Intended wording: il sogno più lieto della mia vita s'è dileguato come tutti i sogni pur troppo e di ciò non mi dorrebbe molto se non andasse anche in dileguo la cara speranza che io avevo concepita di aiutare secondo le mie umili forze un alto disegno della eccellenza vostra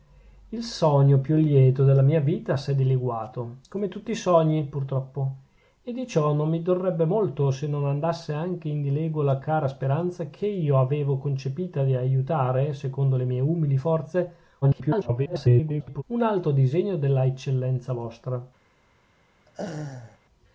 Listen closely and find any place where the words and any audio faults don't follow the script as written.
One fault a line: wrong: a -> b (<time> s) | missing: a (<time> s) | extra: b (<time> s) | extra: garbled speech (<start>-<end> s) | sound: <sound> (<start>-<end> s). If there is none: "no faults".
extra: garbled speech (14.6-16.0 s)
sound: laugh (19.5-20.2 s)